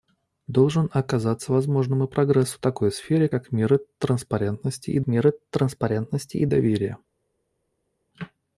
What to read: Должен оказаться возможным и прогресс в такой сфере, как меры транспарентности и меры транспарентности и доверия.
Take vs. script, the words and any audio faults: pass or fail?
pass